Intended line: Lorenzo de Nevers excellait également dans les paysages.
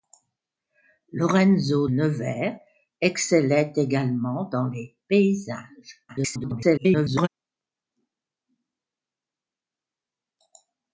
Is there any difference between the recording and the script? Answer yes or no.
yes